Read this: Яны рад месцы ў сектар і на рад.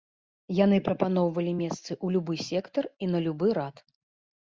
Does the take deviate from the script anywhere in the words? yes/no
yes